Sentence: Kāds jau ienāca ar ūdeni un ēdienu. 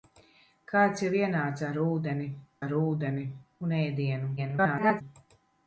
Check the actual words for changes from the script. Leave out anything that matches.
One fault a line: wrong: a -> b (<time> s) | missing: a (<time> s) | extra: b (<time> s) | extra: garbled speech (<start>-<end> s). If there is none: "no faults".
extra: ar ūdeni (2.6 s)
extra: garbled speech (4.4-5.0 s)